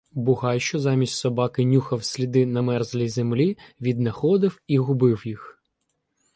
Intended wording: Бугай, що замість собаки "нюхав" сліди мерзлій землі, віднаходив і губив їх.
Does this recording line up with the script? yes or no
no